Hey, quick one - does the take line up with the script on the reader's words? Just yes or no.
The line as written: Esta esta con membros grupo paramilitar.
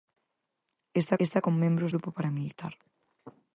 yes